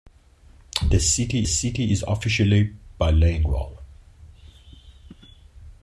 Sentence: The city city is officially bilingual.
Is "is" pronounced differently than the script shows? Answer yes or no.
no